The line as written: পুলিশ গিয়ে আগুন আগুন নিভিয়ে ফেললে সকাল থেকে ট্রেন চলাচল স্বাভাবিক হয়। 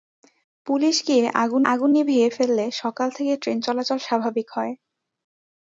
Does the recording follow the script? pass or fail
pass